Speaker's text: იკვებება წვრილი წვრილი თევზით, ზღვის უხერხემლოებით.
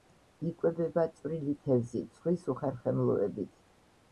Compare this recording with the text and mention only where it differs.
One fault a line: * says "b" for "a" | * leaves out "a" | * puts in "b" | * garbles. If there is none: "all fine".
* leaves out "წვრილი"